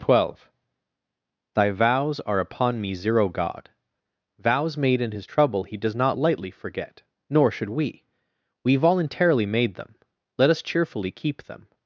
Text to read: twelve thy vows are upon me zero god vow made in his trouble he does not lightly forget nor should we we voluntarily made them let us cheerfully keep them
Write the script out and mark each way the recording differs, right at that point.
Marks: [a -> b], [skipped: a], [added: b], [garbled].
twelve thy vows are upon me zero god [vow -> vows] made in his trouble he does not lightly forget nor should we we voluntarily made them let us cheerfully keep them